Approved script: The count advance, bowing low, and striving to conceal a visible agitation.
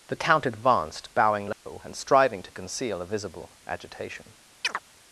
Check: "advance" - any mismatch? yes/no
yes